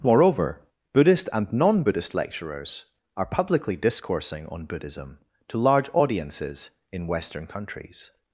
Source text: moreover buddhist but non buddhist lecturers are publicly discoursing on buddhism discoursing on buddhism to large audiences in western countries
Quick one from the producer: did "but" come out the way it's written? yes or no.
no